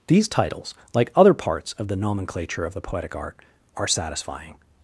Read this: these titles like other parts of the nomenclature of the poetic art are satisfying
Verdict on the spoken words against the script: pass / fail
pass